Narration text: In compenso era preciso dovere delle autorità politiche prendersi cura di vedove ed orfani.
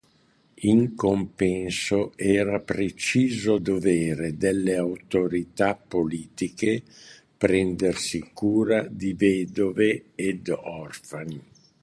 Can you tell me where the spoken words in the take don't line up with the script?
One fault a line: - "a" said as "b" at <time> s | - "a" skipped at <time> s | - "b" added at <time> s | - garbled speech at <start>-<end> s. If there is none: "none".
none